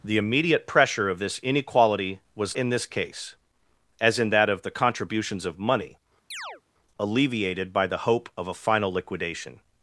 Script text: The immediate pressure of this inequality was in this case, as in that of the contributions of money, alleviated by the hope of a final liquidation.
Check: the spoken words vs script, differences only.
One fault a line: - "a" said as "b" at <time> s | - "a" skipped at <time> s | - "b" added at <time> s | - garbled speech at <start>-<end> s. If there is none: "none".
none